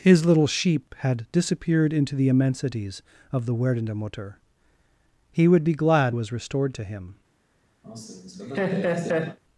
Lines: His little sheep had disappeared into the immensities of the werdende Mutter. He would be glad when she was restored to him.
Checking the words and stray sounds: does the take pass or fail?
fail